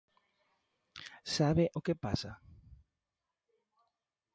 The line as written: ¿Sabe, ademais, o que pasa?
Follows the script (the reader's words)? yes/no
no